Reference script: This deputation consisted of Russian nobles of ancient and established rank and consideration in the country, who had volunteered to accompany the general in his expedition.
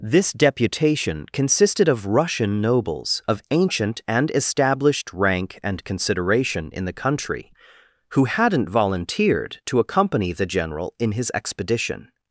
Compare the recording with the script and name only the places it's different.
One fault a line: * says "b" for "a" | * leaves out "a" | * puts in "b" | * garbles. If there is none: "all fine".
* says "hadn't" for "had"